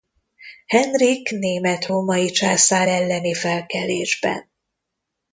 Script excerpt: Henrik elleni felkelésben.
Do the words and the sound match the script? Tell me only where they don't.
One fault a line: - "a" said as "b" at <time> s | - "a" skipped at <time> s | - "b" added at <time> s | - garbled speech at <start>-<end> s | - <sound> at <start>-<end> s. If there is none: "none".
- "német római császár" added at 1.3 s